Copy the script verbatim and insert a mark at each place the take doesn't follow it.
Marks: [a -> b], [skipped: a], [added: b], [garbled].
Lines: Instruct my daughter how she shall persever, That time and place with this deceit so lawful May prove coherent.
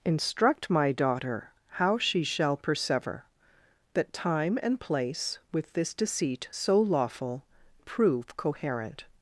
Instruct my daughter how she shall persever, That time and place with this deceit so lawful [skipped: May] prove coherent.